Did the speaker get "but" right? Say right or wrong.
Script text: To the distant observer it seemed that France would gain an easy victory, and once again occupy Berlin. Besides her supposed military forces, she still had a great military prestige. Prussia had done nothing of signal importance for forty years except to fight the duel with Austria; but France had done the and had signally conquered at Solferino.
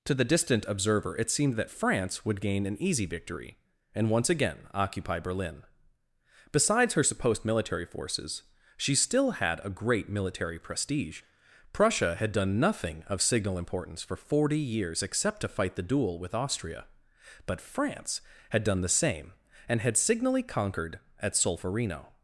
right